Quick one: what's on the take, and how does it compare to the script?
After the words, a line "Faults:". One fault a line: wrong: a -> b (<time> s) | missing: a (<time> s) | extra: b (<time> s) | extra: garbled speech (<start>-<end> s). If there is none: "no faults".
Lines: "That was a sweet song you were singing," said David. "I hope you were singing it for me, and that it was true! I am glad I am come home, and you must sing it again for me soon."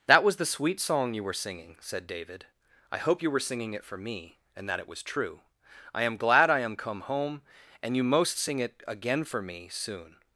"That was the sweet song you were singing," said David. "I hope you were singing it for me, and that it was true! I am glad I am come home, and you most sing it again for me soon."
Faults:
wrong: a -> the (0.4 s)
wrong: must -> most (8.0 s)